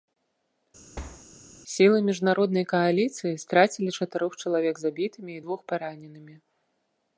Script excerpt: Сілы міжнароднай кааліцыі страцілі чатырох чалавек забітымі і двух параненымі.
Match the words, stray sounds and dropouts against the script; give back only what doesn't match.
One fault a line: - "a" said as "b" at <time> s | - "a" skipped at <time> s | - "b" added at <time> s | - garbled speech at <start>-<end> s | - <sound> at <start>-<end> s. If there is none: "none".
- thud at 1.0-1.3 s